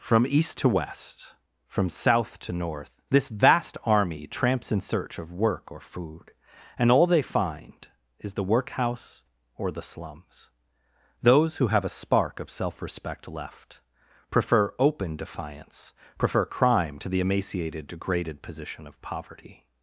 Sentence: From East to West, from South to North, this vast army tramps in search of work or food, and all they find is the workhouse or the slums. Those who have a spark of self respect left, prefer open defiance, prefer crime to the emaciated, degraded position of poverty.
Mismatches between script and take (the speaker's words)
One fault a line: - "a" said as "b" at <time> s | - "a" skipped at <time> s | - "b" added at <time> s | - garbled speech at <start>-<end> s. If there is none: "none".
none